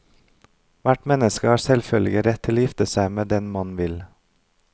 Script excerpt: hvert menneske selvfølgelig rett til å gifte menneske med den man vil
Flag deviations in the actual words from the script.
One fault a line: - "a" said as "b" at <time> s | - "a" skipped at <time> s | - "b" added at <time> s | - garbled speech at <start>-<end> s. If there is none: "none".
- "har" added at 1.5 s
- "menneske" said as "seg" at 2.9 s